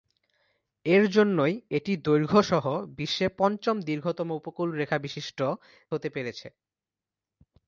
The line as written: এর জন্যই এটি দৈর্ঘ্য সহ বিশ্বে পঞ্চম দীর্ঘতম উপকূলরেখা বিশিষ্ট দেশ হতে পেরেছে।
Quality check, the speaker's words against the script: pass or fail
fail